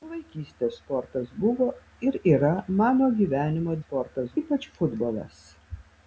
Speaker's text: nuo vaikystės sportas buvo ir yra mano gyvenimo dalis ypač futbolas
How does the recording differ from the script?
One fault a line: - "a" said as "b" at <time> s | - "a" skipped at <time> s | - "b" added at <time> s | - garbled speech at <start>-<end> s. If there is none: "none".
- "dalis" said as "sportas" at 3.8 s